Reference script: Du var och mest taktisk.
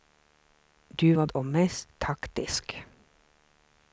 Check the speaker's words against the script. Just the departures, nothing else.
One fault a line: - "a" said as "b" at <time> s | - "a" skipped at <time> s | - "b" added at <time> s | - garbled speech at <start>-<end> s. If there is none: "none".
none